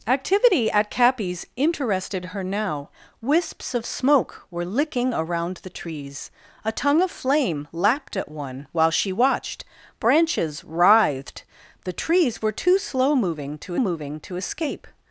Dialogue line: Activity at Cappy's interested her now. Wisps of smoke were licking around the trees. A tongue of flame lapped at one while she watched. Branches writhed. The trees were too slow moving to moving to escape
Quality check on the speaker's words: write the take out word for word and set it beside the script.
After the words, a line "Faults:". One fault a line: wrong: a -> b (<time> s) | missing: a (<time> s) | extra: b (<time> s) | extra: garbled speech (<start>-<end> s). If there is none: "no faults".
Activity at Cappy's interested her now. Wisps of smoke were licking around the trees. A tongue of flame lapped at one while she watched. Branches writhed. The trees were too slow moving to moving to escape
Faults:
no faults